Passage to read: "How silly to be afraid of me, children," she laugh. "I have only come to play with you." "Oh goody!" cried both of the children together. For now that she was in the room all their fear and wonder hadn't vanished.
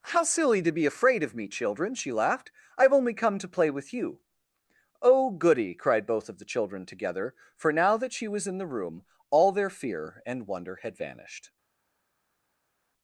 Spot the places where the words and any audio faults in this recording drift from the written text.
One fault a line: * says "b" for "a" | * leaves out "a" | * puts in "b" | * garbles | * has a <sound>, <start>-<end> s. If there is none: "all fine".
* says "laughed" for "laugh"
* says "had" for "hadn't"